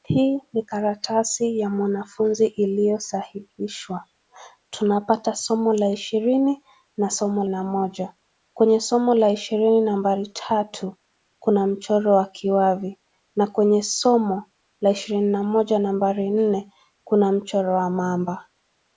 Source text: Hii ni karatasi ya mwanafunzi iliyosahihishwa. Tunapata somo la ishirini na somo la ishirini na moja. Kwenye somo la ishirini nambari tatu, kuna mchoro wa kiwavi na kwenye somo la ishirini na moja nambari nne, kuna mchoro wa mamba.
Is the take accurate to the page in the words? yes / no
no